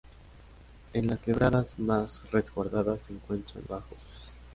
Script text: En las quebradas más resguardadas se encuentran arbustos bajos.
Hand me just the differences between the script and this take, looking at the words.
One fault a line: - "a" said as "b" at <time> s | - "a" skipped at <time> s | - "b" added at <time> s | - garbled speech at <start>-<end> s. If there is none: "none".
- "arbustos" skipped at 3.7 s